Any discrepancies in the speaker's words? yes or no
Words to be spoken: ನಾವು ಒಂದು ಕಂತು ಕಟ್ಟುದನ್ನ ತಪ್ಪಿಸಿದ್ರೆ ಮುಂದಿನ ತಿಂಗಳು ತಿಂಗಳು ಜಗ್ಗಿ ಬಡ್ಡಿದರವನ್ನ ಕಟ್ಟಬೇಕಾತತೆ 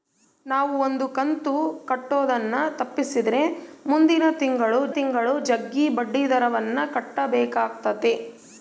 no